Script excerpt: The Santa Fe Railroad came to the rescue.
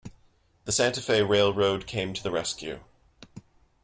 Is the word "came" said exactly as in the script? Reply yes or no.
yes